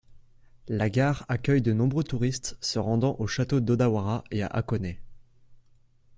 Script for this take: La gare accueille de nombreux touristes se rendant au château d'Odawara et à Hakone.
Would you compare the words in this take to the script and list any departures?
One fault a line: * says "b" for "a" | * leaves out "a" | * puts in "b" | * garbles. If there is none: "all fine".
all fine